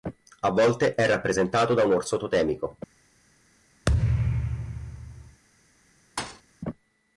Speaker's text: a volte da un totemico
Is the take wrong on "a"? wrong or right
right